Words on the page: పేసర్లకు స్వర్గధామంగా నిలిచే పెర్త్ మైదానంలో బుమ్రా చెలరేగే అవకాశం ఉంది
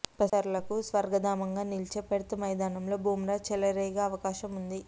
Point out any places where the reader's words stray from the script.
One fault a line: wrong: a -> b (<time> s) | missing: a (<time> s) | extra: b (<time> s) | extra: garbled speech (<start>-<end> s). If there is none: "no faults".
no faults